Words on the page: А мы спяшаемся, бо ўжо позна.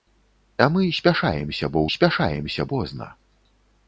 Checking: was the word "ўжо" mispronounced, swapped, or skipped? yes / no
yes